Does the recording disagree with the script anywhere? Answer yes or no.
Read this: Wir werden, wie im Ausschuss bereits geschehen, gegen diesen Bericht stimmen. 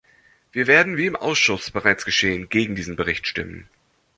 no